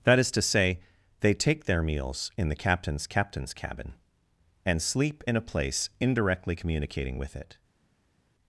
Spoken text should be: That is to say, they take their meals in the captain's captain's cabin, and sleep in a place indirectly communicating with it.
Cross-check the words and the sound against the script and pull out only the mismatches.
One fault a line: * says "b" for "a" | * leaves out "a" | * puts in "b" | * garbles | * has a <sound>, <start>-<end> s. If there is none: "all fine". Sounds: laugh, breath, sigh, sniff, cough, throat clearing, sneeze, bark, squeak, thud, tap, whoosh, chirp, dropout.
all fine